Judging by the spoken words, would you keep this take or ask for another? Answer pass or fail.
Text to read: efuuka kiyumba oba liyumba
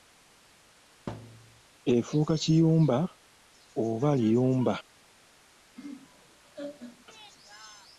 pass